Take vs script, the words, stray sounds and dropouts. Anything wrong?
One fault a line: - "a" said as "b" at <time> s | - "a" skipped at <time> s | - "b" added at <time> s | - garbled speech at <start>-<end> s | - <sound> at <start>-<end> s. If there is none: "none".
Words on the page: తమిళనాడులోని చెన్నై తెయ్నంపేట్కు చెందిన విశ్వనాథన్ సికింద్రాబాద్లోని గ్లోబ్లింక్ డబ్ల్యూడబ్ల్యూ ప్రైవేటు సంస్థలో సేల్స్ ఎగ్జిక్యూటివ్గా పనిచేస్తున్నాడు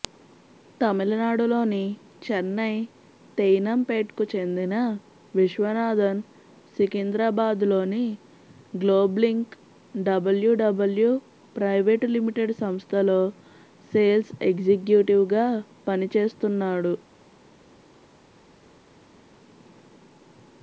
- "లిమిటెడ్" added at 12.2 s